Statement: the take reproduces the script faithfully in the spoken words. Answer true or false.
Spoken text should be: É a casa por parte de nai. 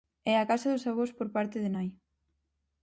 false